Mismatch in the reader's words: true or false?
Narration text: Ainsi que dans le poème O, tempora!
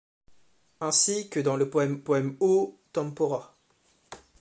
true